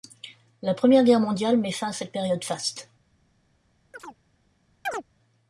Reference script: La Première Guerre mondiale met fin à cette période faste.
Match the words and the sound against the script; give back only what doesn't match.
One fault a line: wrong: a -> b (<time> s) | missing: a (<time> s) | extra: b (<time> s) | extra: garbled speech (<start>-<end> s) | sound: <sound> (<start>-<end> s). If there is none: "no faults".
sound: chirp (3.9-4.2 s)
sound: chirp (4.9-5.0 s)